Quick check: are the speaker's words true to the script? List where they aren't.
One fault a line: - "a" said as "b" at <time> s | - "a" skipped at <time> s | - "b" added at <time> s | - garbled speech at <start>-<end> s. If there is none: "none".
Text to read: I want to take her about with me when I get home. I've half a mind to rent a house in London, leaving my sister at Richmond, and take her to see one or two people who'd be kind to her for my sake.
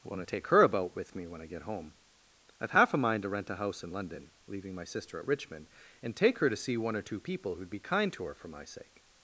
none